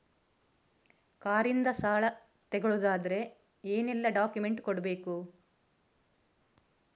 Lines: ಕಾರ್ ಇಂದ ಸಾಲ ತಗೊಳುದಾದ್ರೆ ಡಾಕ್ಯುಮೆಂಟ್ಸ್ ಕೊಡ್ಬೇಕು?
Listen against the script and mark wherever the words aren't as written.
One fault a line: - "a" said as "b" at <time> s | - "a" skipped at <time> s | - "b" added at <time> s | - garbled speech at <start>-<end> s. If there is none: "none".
- "ಏನೆಲ್ಲ" added at 3.6 s